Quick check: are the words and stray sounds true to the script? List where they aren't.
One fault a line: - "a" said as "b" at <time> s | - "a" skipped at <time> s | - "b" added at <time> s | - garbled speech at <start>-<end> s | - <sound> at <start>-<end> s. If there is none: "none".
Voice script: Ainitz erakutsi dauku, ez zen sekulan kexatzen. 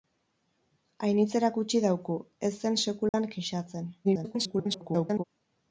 - dropout at 3.1-3.1 s
- garbled speech at 4.0-5.2 s